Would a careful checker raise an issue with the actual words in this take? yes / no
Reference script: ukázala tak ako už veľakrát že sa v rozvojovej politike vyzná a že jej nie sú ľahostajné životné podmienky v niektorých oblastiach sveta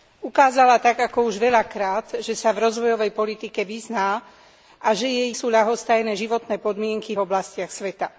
yes